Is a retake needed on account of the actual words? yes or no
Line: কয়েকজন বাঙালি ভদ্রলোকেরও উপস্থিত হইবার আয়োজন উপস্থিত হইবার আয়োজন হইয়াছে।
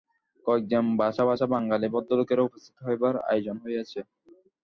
yes